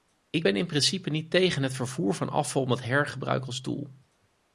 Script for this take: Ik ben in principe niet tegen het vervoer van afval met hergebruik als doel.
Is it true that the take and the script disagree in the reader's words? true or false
false